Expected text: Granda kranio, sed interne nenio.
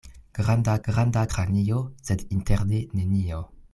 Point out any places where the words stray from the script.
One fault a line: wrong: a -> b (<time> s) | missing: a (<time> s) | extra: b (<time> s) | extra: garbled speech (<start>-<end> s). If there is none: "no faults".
extra: granda (0.9 s)